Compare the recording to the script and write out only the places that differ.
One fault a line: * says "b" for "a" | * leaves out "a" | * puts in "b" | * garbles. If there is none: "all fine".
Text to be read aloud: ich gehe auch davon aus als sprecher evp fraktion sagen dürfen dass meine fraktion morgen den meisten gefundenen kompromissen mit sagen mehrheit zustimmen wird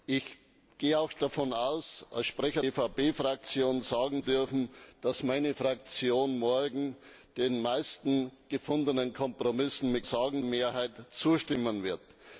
all fine